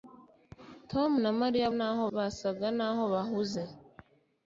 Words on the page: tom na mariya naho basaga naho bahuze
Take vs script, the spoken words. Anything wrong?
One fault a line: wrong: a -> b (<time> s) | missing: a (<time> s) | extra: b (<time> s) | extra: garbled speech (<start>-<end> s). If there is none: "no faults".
no faults